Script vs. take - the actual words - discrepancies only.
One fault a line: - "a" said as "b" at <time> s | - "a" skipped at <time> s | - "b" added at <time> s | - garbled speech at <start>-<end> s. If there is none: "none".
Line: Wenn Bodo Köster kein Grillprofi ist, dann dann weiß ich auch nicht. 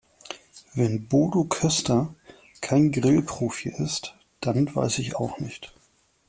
- "dann" skipped at 4.7 s